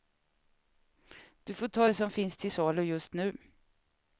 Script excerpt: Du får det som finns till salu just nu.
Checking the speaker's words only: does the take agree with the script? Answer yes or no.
no